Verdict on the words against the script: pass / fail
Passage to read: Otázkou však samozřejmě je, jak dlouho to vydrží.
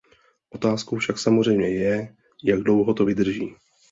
pass